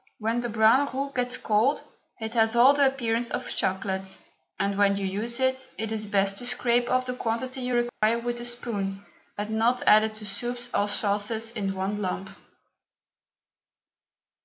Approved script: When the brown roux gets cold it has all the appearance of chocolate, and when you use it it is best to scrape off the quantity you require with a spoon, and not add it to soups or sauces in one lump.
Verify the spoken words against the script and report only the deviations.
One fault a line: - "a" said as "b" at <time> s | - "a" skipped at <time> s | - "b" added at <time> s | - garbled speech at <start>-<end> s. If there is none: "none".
none